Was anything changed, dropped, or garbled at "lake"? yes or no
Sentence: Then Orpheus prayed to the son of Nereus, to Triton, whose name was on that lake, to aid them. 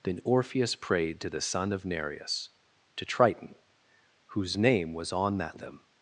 yes